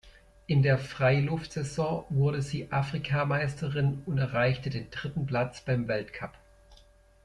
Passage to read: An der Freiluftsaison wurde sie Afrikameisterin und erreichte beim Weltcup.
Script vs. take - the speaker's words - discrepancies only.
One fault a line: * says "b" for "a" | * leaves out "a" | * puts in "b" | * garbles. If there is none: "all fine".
* says "In" for "An"
* puts in "den dritten Platz"